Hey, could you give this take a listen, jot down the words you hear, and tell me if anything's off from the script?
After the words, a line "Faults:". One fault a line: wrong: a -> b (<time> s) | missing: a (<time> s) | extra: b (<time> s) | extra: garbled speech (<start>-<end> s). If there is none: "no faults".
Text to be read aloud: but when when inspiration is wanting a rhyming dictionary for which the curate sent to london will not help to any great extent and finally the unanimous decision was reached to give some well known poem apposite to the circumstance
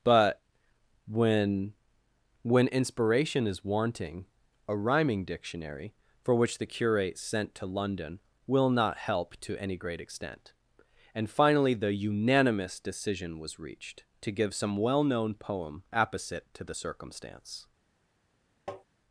but when when inspiration is wanting a rhyming dictionary for which the curate sent to london will not help to any great extent and finally the unanimous decision was reached to give some well known poem apposite to the circumstance
Faults:
no faults